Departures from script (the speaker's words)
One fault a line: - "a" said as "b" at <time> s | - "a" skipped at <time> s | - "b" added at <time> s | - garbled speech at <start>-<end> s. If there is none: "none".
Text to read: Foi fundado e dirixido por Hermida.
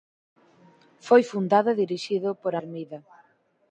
none